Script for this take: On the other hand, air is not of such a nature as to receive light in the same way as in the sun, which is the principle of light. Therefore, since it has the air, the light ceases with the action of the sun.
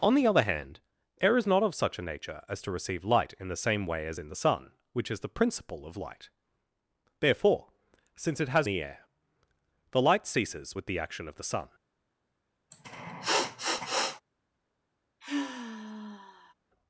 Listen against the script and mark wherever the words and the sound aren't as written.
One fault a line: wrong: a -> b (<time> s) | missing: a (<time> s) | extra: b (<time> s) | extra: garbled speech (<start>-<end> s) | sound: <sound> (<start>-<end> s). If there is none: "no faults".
sound: sniff (12.7-14.2 s)
sound: sigh (15.2-16.5 s)